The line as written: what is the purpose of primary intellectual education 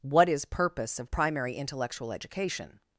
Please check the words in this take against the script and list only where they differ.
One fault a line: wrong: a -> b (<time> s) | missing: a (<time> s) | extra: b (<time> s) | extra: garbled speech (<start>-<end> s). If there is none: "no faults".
missing: the (0.5 s)